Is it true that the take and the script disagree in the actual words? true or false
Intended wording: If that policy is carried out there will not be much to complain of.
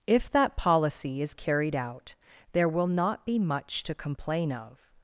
false